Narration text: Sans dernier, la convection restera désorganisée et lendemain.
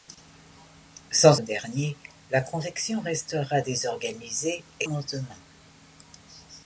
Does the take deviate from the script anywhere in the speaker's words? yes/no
no